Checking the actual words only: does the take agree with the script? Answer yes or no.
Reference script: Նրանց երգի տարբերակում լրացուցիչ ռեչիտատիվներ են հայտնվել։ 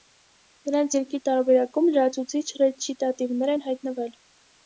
yes